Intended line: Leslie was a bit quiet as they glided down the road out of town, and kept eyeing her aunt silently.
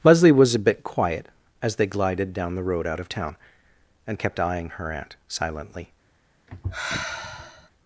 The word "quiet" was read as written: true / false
true